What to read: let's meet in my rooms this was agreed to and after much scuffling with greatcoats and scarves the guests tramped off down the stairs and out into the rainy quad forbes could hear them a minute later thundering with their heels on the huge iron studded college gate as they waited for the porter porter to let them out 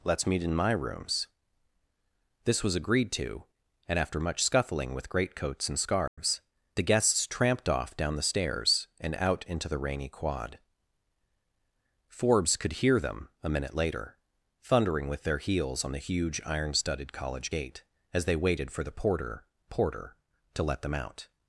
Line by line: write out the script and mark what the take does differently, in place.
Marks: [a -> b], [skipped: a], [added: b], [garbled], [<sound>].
let's meet in my rooms this was agreed to and after much scuffling with greatcoats and scarves [dropout] the guests tramped off down the stairs and out into the rainy quad forbes could hear them a minute later thundering with their heels on the huge iron studded college gate as they waited for the porter porter to let them out